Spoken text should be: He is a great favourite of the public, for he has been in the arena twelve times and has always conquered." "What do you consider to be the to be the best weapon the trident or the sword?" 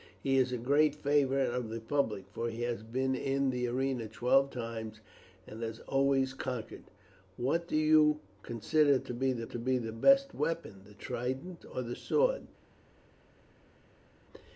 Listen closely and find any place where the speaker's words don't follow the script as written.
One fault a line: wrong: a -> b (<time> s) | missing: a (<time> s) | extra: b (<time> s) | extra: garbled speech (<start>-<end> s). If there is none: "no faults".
no faults